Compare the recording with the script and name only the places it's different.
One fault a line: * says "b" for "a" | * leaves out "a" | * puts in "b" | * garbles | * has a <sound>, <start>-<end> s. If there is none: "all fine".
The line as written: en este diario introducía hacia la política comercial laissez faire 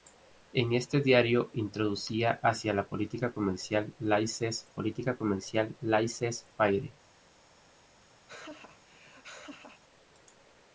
* puts in "política comercial laissez"
* has a laugh, 8.3-9.8 s